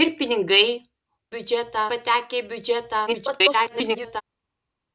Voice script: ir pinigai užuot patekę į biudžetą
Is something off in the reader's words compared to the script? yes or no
yes